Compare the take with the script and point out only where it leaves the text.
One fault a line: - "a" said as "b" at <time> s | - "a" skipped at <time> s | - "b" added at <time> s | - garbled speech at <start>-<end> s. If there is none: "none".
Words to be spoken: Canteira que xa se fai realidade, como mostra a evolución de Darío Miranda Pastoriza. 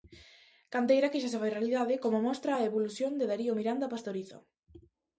none